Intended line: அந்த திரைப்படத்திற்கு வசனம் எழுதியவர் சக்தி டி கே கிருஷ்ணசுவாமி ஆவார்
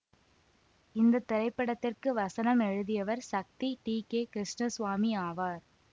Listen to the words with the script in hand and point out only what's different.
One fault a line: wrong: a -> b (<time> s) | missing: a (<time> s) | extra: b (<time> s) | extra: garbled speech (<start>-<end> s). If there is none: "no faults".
wrong: அந்த -> இந்த (0.9 s)